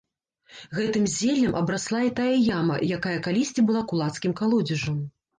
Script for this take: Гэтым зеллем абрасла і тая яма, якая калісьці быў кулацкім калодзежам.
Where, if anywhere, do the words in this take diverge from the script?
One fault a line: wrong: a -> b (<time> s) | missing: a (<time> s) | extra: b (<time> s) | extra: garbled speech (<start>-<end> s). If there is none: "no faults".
wrong: быў -> была (3.7 s)